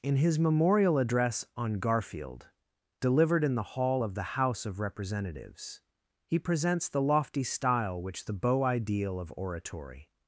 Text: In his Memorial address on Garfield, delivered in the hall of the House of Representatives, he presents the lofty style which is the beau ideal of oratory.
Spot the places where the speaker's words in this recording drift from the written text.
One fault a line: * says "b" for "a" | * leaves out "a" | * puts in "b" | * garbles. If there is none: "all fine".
* leaves out "is"